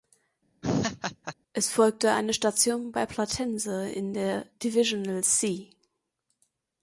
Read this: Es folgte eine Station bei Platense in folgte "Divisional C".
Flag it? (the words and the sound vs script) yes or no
yes